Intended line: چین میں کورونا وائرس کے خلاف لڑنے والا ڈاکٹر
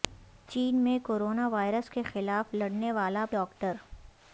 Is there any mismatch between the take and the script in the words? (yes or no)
no